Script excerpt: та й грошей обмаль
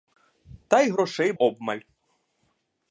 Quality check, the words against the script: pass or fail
pass